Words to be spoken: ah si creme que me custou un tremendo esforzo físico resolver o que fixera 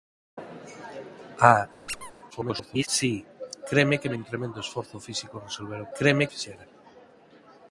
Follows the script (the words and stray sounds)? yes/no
no